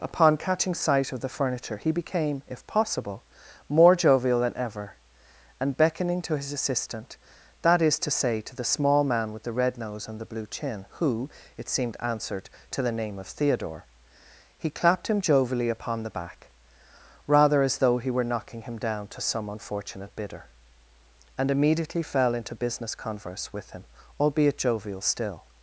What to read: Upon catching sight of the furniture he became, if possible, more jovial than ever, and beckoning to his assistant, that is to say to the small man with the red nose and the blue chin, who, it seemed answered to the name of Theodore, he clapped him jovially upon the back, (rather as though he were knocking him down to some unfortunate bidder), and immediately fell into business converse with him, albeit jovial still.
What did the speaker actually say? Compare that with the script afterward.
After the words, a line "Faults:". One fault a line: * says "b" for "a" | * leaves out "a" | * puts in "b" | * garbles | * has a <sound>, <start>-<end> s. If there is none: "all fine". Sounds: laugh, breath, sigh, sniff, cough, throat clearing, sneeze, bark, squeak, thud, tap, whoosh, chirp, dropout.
Upon catching sight of the furniture he became, if possible, more jovial than ever, and beckoning to his assistant, that is to say to the small man with the red nose and the blue chin, who, it seemed answered to the name of Theodore, he clapped him jovially upon the back, (rather as though he were knocking him down to some unfortunate bidder), and immediately fell into business converse with him, albeit jovial still.
Faults:
all fine